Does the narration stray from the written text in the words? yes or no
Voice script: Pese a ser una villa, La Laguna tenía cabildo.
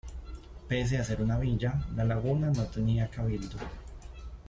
yes